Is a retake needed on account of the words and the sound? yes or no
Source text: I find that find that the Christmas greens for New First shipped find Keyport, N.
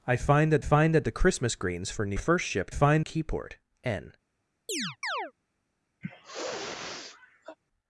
yes